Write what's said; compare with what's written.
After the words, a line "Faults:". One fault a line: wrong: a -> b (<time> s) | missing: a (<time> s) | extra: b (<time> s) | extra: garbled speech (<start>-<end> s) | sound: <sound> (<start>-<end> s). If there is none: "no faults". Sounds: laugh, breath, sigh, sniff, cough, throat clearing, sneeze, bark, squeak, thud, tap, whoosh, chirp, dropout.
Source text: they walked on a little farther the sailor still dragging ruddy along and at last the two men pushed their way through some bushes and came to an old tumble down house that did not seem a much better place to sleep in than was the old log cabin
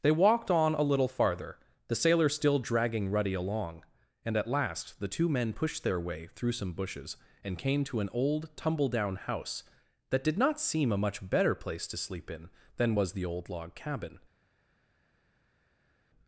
they walked on a little farther the sailor still dragging ruddy along and at last the two men pushed their way through some bushes and came to an old tumble down house that did not seem a much better place to sleep in than was the old log cabin
Faults:
no faults